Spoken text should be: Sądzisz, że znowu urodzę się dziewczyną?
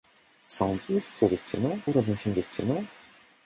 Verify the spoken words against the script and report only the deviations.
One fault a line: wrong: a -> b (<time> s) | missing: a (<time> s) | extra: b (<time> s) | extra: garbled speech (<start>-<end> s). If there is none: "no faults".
wrong: znowu -> dziewczyną (1.3 s)